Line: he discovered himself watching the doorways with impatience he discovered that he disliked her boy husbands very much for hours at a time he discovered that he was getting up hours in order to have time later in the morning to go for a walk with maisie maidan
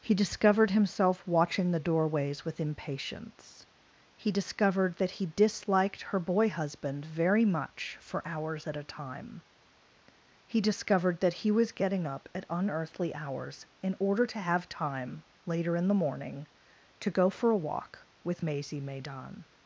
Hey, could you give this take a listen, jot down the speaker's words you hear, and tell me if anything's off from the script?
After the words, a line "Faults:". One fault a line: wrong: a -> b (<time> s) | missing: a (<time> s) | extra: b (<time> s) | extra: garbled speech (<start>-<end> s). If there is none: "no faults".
he discovered himself watching the doorways with impatience he discovered that he disliked her boy husband very much for hours at a time he discovered that he was getting up at unearthly hours in order to have time later in the morning to go for a walk with maisie maidan
Faults:
wrong: husbands -> husband (6.5 s)
extra: at unearthly (12.3 s)